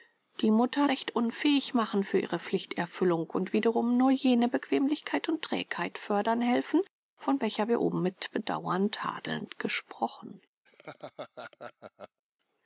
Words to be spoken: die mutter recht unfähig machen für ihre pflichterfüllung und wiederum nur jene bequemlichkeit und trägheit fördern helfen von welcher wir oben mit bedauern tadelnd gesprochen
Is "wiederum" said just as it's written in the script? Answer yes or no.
yes